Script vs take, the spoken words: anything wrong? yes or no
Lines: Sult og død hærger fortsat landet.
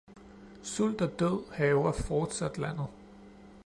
no